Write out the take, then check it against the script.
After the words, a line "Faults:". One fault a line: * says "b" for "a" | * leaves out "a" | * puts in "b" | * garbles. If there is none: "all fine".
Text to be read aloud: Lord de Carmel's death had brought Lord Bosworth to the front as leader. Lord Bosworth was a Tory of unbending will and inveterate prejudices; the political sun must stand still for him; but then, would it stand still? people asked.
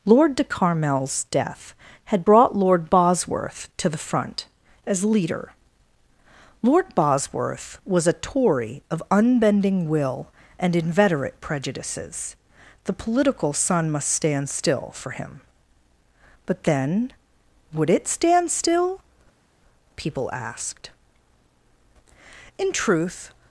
Lord de Carmel's death had brought Lord Bosworth to the front as leader. Lord Bosworth was a Tory of unbending will and inveterate prejudices; the political sun must stand still for him; but then, would it stand still? people asked. In truth
Faults:
* puts in "In truth"